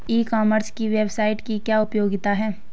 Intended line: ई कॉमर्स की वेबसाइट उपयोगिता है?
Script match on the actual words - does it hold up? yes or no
no